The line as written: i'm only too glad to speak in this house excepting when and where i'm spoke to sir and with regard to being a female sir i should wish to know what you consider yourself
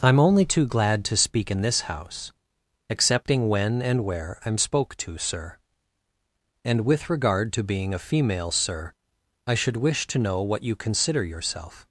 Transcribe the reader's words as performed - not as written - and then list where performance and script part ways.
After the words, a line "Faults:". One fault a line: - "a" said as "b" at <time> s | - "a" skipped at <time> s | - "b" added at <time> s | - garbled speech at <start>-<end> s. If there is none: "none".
i'm only too glad to speak in this house excepting when and where i'm spoke to sir and with regard to being a female sir i should wish to know what you consider yourself
Faults:
none